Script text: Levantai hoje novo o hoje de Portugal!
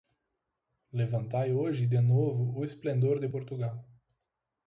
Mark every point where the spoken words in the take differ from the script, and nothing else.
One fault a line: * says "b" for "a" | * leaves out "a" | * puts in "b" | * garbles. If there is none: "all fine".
* puts in "de"
* says "esplendor" for "hoje"